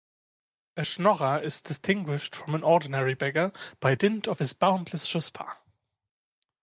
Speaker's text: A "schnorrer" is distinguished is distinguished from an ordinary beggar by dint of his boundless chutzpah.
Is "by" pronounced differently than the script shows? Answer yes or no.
no